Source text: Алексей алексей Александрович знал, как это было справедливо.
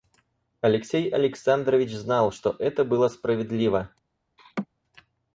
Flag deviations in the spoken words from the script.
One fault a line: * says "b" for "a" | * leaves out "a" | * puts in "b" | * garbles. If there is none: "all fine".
* leaves out "алексей"
* says "что" for "как"